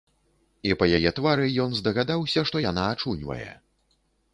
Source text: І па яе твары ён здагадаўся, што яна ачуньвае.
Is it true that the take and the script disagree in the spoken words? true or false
false